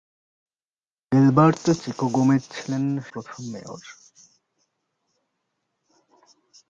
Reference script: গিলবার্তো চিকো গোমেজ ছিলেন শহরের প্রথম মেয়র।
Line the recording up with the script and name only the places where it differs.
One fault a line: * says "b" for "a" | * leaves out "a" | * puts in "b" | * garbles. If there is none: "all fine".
* leaves out "শহরের"